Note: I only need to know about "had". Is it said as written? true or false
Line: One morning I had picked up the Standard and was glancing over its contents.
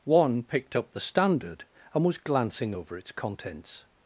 false